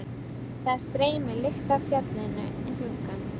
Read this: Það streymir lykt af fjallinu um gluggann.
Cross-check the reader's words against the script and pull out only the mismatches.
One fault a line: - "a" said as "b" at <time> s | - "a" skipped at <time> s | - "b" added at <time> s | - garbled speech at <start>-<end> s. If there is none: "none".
none